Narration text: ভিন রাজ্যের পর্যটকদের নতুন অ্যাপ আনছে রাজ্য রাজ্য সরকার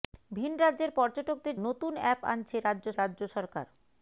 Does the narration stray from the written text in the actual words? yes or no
no